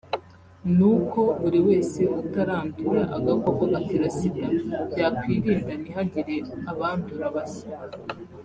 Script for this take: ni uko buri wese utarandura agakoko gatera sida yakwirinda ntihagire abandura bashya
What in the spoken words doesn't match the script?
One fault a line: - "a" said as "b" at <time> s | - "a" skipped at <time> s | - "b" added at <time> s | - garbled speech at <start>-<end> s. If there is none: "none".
none